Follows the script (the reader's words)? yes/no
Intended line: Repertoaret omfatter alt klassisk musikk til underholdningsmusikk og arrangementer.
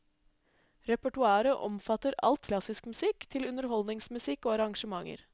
yes